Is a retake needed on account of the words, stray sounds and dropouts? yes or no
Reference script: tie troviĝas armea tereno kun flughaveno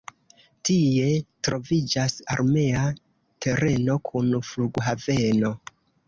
no